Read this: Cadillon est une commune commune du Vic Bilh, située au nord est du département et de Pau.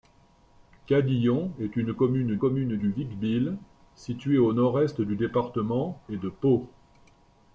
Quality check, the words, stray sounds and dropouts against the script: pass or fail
pass